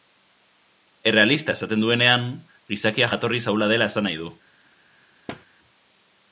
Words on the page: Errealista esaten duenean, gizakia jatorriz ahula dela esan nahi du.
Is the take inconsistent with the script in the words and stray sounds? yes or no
yes